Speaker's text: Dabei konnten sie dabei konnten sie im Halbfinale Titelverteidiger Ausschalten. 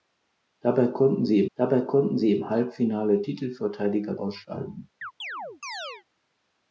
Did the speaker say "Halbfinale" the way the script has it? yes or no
yes